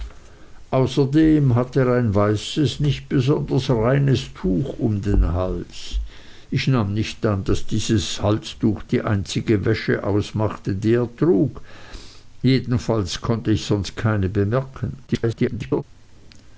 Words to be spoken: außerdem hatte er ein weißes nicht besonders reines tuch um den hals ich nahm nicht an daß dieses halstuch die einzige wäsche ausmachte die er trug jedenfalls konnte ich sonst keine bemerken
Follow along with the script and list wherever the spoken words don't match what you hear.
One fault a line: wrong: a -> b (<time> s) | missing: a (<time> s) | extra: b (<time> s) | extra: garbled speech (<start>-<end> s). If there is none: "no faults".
extra: garbled speech (15.1-15.8 s)